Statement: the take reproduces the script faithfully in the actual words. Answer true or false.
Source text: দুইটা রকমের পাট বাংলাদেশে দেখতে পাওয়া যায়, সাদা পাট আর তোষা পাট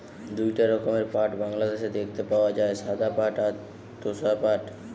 true